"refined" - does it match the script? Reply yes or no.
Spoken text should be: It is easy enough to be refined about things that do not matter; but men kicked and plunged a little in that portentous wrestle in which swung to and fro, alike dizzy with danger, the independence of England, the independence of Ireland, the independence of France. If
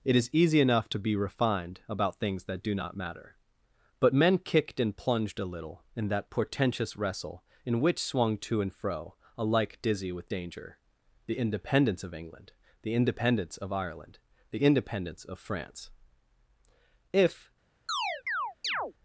yes